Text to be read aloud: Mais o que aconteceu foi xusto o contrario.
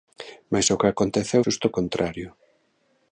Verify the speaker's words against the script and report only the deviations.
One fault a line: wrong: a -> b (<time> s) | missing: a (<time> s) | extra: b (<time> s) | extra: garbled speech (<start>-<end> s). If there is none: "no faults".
missing: foi (1.4 s)